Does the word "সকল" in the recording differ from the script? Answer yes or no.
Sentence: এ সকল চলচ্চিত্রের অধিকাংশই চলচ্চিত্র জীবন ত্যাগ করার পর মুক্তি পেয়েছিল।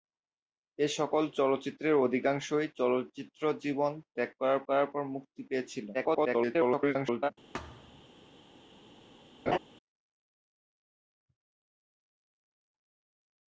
no